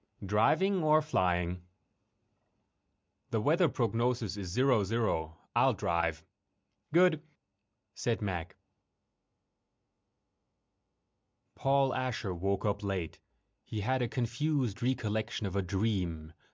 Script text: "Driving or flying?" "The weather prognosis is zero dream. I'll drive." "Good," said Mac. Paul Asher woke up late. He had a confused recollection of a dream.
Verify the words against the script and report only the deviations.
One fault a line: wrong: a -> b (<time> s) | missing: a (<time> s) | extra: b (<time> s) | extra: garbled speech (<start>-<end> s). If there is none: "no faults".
wrong: dream -> zero (4.8 s)